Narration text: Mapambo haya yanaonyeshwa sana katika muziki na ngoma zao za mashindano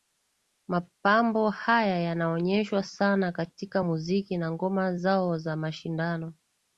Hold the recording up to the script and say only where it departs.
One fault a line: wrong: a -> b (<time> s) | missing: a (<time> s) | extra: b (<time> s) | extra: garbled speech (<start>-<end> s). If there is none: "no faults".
no faults